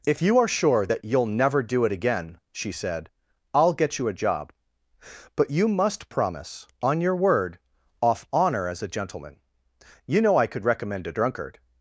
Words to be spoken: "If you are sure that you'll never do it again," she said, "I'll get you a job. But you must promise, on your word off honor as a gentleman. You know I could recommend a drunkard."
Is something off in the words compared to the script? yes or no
no